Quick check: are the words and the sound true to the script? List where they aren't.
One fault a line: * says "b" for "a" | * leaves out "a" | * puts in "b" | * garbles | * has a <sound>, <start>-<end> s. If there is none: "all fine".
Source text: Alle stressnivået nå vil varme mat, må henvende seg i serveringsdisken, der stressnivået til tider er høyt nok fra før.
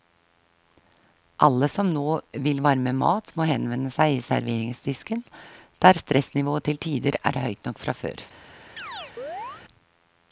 * says "som" for "stressnivået"
* has a chirp, 8.8-9.6 s